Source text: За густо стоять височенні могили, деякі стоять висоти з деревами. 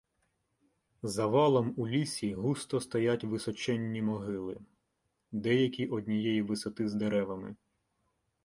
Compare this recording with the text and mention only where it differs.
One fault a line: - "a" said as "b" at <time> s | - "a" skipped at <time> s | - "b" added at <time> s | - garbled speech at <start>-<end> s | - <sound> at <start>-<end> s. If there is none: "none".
- "валом у лісі" added at 1.3 s
- "стоять" said as "однієї" at 5.9 s